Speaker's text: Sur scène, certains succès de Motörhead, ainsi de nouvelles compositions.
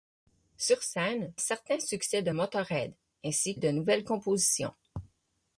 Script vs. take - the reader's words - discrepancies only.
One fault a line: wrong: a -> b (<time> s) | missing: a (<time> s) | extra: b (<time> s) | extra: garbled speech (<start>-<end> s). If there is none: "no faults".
no faults